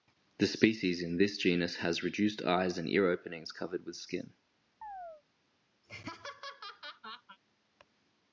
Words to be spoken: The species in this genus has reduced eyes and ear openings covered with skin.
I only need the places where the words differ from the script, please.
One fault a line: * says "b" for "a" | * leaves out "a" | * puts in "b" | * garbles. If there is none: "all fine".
all fine